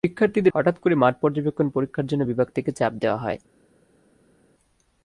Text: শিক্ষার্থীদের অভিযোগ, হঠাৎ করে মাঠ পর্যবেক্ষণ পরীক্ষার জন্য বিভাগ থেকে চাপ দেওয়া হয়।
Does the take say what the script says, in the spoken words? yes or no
no